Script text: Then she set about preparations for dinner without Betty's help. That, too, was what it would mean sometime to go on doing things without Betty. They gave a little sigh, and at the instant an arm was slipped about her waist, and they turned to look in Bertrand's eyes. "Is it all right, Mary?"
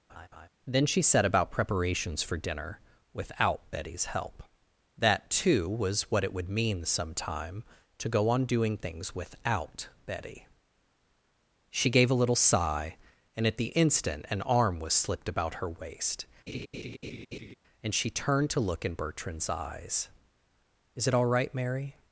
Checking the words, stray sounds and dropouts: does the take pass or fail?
fail